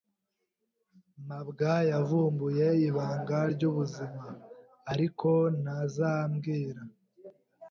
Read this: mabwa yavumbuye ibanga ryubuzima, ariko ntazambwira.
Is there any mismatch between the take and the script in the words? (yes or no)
no